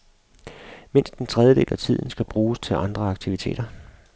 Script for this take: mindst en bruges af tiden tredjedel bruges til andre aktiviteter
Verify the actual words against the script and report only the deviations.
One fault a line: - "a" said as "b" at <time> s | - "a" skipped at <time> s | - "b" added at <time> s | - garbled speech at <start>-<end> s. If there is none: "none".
- "bruges" said as "tredjedel" at 1.3 s
- "tredjedel" said as "skal" at 2.1 s